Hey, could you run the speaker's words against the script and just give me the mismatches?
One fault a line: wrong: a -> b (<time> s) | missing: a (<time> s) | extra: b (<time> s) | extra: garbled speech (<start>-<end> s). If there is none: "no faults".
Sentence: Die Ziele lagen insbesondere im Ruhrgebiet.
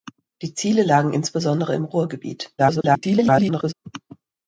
extra: garbled speech (2.6-3.7 s)